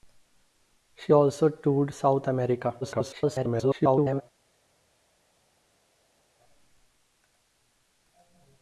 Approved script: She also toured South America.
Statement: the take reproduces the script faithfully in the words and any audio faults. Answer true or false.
false